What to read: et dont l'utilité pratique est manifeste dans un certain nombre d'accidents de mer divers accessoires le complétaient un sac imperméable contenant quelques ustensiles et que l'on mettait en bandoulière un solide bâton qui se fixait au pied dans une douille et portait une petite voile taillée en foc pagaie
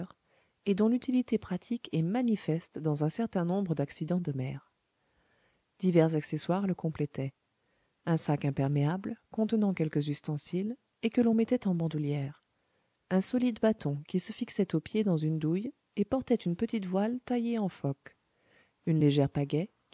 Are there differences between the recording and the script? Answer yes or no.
yes